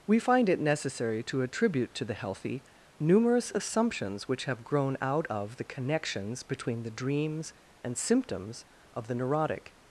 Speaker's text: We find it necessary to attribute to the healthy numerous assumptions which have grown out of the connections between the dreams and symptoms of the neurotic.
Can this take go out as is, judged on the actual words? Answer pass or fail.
pass